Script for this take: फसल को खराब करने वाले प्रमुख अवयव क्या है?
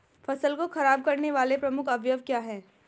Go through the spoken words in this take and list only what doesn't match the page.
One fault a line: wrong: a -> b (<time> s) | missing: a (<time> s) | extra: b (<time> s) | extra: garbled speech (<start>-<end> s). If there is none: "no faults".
no faults